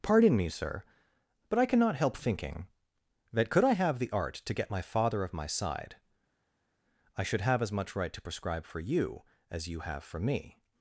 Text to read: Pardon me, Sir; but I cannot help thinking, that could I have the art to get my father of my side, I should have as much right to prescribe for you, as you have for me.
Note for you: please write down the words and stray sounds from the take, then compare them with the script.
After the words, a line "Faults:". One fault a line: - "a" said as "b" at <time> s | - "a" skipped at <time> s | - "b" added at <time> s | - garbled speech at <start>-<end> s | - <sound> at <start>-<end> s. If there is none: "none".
Pardon me, Sir; but I cannot help thinking, that could I have the art to get my father of my side, I should have as much right to prescribe for you, as you have for me.
Faults:
none